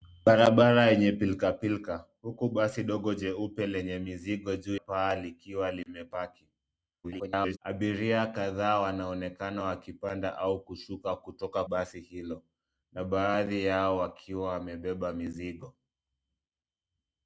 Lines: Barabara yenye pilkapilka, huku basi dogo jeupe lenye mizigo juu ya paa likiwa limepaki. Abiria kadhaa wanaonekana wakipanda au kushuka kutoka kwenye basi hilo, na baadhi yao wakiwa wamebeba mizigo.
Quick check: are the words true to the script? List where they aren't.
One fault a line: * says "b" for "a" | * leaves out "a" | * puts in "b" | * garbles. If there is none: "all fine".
* leaves out "ya"
* garbles
* leaves out "kwenye"